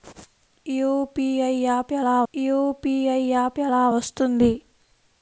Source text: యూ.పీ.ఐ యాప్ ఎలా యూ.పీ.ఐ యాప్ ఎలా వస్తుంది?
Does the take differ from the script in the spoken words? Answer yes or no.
no